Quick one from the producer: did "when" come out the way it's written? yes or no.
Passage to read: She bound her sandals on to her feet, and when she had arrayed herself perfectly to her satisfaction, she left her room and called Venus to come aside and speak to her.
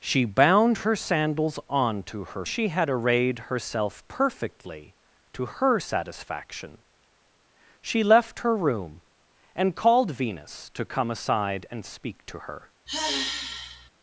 no